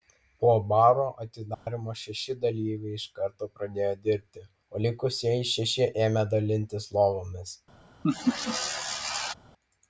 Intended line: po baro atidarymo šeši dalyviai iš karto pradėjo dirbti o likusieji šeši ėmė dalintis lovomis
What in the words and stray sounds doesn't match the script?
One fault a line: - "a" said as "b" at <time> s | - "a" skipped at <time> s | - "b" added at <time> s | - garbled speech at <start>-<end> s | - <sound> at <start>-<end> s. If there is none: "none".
- dropout at 1.5-1.7 s
- laugh at 8.0-9.3 s